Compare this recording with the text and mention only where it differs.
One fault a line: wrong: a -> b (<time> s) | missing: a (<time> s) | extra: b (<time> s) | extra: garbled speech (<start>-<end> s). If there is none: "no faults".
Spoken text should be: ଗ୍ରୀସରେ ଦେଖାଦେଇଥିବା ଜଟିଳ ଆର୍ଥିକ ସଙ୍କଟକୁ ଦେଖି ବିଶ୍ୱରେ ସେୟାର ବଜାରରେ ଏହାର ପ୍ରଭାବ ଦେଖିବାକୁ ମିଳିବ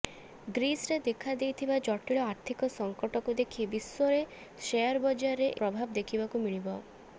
missing: ଏହାର (5.5 s)